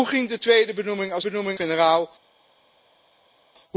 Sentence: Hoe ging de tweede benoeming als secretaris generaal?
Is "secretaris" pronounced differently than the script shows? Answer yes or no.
yes